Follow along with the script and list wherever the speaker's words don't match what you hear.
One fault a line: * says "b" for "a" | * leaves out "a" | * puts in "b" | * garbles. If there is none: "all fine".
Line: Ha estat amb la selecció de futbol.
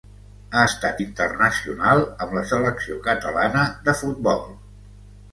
* puts in "internacional"
* puts in "catalana"